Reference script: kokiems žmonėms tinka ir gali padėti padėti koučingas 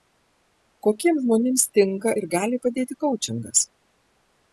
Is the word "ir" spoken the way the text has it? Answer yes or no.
yes